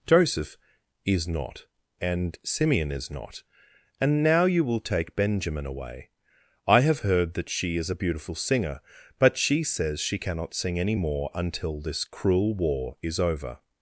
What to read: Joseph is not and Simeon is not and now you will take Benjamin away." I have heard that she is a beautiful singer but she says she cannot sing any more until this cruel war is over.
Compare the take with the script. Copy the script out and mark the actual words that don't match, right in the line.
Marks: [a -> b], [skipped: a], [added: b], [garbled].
Joseph is not and Simeon is not and now you will take Benjamin away." I have heard that she is a beautiful singer but she says she cannot sing any more until this cruel war is over.